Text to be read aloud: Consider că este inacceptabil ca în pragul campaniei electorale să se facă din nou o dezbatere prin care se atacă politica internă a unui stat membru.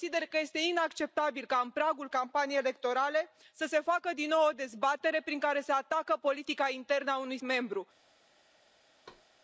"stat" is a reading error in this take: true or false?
true